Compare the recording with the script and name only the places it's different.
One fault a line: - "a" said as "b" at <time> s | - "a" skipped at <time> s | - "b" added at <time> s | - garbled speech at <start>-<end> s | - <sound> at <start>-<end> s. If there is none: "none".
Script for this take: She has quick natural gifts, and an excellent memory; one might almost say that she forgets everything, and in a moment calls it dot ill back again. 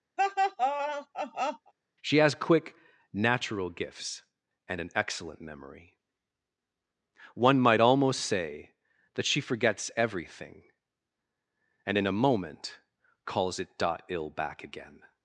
- laugh at 0.2-1.7 s